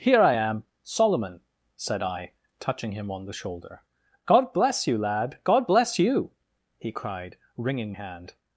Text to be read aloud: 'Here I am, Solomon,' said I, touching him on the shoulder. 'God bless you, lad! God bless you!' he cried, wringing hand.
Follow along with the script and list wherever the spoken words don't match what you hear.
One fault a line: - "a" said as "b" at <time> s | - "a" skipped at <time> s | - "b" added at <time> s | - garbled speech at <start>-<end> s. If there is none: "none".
none